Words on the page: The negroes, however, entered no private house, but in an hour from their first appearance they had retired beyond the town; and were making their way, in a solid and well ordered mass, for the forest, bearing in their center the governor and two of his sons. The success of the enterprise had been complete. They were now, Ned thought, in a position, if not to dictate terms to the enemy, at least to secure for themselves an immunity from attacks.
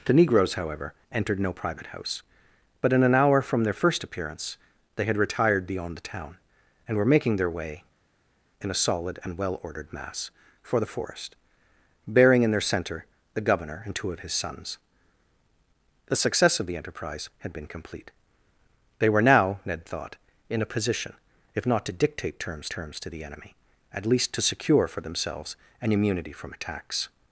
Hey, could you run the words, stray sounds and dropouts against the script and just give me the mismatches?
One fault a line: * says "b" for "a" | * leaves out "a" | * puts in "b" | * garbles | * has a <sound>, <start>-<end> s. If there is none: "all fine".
* puts in "terms"